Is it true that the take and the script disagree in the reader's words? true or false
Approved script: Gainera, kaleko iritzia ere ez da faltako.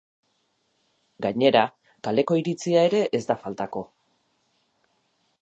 false